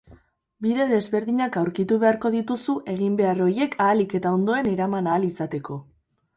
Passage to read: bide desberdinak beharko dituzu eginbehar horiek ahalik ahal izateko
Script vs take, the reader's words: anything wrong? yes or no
yes